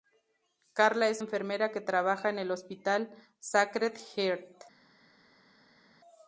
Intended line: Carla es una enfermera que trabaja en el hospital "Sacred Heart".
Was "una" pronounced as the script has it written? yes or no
no